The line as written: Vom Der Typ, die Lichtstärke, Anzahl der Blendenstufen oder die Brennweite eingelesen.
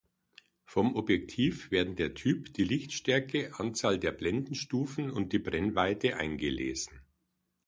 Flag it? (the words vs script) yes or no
yes